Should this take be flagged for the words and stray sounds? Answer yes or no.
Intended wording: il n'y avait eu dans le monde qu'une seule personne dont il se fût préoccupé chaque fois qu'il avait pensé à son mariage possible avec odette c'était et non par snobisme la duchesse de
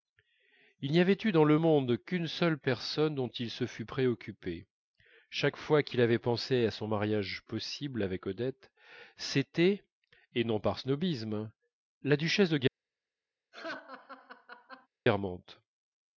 yes